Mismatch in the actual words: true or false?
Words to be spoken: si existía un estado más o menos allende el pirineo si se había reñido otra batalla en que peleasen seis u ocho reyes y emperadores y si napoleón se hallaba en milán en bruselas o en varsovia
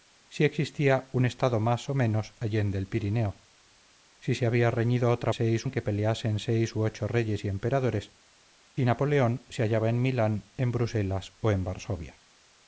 true